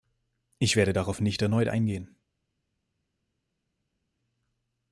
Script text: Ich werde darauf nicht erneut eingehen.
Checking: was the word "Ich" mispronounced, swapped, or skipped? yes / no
no